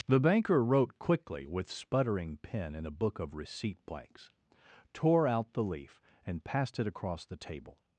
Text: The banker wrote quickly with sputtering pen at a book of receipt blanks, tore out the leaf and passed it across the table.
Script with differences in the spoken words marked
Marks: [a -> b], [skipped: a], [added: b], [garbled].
The banker wrote quickly with sputtering pen [at -> in] a book of receipt blanks, tore out the leaf and passed it across the table.